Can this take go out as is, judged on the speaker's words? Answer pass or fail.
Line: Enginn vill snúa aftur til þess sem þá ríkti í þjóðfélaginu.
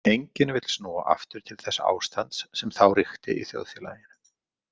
fail